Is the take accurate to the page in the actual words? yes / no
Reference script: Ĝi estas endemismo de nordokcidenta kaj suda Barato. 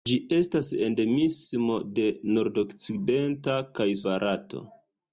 no